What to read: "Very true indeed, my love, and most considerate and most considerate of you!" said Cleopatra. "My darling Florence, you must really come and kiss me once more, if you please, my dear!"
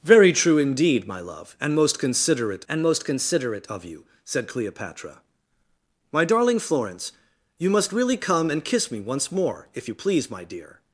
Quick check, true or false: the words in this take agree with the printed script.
true